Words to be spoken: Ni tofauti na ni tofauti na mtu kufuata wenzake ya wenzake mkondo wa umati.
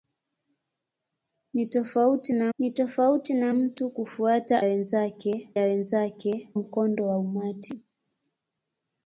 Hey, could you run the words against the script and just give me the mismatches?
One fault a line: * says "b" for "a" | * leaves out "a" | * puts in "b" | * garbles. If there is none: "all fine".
all fine